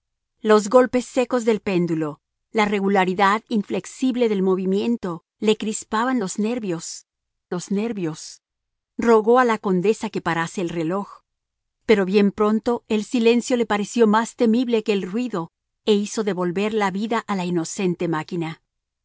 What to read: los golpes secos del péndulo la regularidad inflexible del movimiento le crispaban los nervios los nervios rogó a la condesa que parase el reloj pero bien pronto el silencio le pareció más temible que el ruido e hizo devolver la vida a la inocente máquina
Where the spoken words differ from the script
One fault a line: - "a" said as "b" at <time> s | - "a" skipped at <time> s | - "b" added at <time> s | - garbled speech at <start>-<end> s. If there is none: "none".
none